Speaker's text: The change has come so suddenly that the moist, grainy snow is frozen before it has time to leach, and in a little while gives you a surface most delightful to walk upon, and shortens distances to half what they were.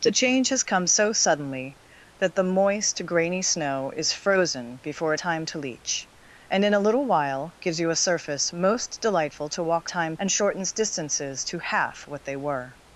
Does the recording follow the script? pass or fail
fail